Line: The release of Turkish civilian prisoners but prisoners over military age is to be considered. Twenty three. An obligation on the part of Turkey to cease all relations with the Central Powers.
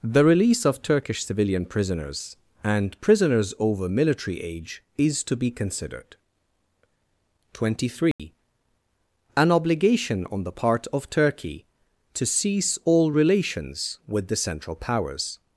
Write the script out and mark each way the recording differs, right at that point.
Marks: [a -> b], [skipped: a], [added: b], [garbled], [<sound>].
The release of Turkish civilian prisoners [but -> and] prisoners over military age is to be considered. Twenty three. [dropout] An obligation on the part of Turkey to cease all relations with the Central Powers.